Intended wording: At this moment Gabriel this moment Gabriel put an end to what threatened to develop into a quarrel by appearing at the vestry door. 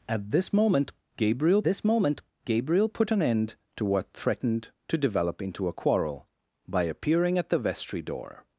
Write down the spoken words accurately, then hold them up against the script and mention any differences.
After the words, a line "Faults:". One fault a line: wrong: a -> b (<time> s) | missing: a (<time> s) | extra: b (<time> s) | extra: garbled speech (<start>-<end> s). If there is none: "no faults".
At this moment Gabriel this moment Gabriel put an end to what threatened to develop into a quarrel by appearing at the vestry door.
Faults:
no faults